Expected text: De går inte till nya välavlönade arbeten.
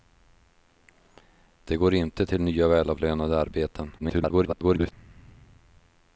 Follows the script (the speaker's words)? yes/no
no